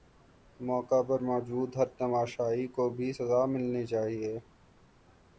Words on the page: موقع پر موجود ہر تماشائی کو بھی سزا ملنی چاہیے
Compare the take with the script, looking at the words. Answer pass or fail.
pass